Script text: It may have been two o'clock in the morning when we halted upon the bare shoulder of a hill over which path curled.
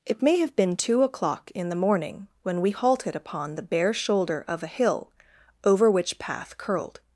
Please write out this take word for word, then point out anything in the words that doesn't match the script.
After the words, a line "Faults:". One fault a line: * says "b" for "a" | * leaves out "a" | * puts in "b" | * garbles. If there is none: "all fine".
It may have been two o'clock in the morning when we halted upon the bare shoulder of a hill over which path curled.
Faults:
all fine